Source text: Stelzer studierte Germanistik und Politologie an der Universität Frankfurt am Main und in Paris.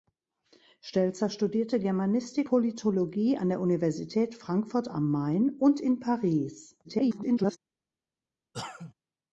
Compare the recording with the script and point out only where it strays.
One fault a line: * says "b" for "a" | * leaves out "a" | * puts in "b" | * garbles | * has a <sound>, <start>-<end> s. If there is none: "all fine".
* leaves out "und"
* garbles
* has a cough, 8.5-8.9 s